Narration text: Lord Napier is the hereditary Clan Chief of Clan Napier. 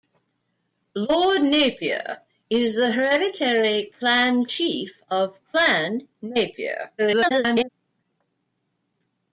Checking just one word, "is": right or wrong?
right